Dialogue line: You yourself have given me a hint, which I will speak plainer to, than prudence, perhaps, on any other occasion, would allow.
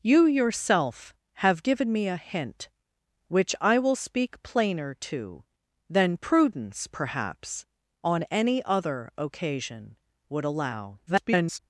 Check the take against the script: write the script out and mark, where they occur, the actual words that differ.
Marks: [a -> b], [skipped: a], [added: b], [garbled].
You yourself have given me a hint, which I will speak plainer to, than prudence, perhaps, on any other occasion, would allow. [garbled]